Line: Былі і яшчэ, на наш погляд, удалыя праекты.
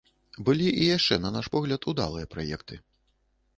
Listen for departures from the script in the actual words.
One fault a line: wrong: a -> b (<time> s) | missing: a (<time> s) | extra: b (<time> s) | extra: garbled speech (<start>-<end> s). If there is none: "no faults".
no faults